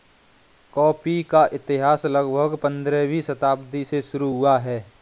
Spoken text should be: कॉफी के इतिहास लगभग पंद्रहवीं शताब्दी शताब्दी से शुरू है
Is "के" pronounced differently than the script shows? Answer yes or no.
yes